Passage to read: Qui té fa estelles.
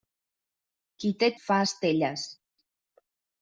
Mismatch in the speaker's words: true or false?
false